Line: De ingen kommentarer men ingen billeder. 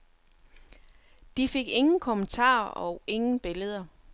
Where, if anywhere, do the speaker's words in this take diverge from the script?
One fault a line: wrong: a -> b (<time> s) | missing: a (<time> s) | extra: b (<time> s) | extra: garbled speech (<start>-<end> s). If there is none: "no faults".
extra: fik (1.5 s)
wrong: men -> og (2.7 s)